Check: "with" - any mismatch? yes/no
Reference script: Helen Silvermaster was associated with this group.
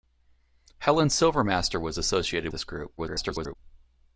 yes